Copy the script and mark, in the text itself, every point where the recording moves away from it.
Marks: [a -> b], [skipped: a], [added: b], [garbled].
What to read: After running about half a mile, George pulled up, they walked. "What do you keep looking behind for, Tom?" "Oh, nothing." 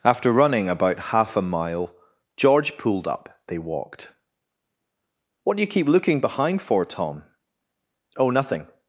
After running about half a mile, George pulled up, they walked. "What do you keep looking behind for, Tom?" "Oh, nothing."